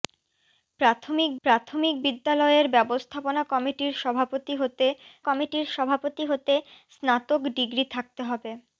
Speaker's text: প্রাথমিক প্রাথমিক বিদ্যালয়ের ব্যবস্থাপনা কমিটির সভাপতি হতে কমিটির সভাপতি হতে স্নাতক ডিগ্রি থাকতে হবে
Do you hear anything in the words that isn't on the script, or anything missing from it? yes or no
no